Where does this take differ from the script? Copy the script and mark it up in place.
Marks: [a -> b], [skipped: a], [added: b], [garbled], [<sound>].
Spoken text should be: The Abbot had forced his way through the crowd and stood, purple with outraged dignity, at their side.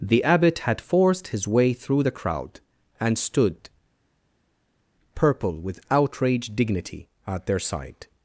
The Abbot had forced his way through the crowd and stood, purple with outraged dignity, at their side.